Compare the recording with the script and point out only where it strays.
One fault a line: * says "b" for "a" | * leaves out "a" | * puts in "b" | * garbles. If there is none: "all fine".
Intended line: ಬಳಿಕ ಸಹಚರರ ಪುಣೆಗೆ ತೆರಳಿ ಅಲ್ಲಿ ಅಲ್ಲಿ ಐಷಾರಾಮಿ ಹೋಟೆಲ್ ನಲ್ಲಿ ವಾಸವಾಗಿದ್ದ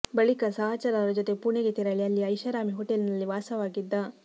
* puts in "ಜೊತೆ"
* leaves out "ಅಲ್ಲಿ"